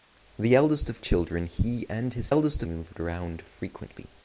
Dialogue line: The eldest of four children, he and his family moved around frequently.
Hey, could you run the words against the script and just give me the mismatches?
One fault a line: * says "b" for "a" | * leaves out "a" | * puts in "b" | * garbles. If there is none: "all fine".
* leaves out "four"
* says "eldest" for "family"